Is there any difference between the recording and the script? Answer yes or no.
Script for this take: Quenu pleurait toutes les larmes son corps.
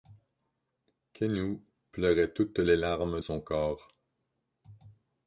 no